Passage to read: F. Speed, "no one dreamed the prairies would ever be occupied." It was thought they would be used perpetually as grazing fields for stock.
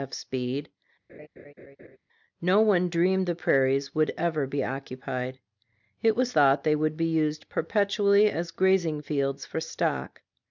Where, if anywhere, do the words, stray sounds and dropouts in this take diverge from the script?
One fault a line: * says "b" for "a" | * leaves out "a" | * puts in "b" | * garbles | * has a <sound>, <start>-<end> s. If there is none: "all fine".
* has a laugh, 1.1-2.0 s